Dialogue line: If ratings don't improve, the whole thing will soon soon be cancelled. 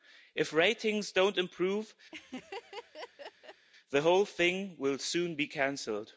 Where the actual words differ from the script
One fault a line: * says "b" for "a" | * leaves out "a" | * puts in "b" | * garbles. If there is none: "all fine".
* leaves out "soon"